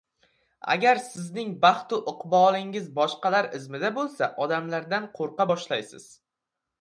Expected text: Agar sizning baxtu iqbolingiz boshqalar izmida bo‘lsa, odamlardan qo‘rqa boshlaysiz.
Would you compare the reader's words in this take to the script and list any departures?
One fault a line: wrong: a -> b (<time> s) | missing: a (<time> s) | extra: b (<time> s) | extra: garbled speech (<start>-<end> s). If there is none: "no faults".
no faults